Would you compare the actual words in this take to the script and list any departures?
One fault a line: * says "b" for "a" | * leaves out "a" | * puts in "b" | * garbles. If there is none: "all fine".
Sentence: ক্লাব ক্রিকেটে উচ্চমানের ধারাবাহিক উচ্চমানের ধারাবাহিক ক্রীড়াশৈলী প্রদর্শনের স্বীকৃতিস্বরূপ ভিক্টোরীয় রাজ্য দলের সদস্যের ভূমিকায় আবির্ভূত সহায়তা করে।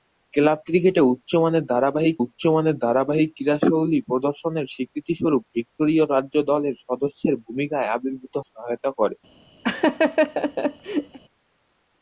all fine